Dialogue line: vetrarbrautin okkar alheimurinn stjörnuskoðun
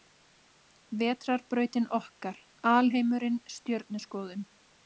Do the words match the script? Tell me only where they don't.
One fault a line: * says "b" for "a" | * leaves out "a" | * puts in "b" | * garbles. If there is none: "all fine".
all fine